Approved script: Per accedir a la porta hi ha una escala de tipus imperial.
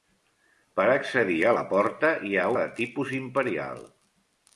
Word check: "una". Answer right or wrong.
wrong